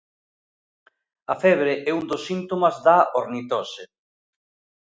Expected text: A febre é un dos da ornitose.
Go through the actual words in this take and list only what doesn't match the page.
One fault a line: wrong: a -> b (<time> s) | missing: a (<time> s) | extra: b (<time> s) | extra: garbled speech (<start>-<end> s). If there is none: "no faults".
extra: síntomas (2.3 s)